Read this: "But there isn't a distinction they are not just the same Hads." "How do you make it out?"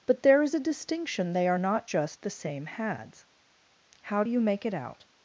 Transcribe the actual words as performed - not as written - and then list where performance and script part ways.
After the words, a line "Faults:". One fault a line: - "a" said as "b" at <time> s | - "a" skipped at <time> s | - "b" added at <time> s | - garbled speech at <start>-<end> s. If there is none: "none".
"But there is a distinction they are not just the same Hads." "How do you make it out?"
Faults:
- "isn't" said as "is" at 0.4 s